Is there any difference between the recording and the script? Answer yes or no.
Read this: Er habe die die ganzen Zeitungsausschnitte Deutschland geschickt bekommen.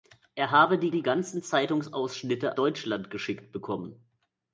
no